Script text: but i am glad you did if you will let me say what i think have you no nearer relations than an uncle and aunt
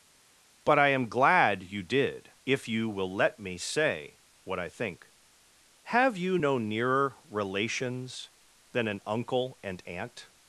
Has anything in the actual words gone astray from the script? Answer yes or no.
no